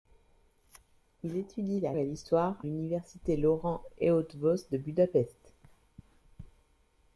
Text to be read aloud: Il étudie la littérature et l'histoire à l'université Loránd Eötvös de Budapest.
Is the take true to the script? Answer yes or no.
no